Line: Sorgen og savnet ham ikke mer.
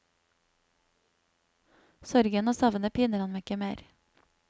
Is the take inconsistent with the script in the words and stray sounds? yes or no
yes